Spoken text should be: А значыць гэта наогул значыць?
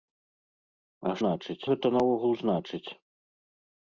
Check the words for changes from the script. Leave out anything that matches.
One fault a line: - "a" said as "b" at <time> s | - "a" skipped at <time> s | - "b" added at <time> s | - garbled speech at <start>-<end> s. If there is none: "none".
none